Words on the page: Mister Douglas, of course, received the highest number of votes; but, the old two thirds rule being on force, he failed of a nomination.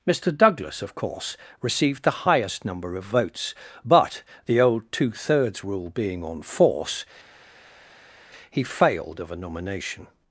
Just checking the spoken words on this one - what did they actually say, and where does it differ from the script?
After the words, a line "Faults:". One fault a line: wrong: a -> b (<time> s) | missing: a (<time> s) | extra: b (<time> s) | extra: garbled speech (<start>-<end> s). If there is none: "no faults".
Mister Douglas, of course, received the highest number of votes; but, the old two thirds rule being on force, he failed of a nomination.
Faults:
no faults